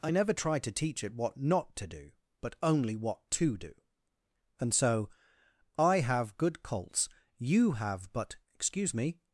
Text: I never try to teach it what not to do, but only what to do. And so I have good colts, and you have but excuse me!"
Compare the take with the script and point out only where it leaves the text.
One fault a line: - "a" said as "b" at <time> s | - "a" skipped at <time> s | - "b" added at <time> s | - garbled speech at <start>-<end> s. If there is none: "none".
- "and" skipped at 7.1 s